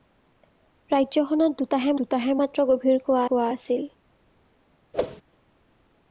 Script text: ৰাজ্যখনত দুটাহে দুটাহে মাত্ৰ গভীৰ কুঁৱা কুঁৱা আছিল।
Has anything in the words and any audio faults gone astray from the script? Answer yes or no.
yes